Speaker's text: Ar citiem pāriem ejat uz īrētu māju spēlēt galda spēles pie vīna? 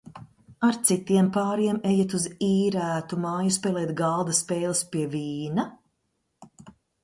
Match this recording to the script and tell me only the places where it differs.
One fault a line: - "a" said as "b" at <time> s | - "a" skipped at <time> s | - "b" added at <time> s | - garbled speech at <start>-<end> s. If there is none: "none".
none